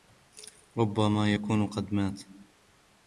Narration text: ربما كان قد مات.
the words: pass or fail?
fail